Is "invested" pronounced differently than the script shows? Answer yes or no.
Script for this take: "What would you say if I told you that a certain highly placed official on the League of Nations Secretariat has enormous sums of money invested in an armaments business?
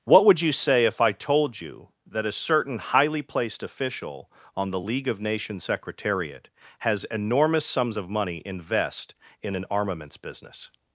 yes